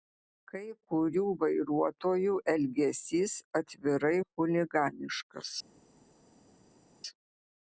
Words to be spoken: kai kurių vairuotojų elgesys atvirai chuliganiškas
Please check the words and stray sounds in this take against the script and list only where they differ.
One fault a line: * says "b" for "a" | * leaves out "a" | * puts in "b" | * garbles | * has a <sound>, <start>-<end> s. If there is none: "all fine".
all fine